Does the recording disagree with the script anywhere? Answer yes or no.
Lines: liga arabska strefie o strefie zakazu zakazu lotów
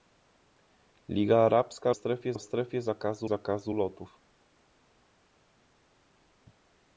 no